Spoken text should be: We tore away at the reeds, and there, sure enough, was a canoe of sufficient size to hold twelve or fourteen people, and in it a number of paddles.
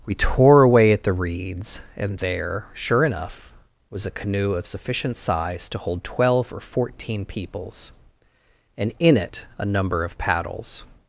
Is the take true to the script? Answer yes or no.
no